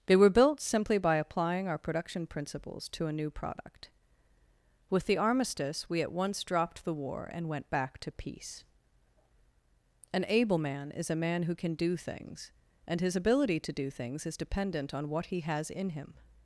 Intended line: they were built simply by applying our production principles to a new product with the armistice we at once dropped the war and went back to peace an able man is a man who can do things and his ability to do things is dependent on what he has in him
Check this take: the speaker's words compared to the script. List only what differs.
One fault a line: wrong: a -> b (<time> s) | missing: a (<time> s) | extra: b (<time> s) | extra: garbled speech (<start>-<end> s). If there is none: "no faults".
no faults